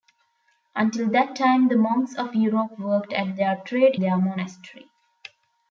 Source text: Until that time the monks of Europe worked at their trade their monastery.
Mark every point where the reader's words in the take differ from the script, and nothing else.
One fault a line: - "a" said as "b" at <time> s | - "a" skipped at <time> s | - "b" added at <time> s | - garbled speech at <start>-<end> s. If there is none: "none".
none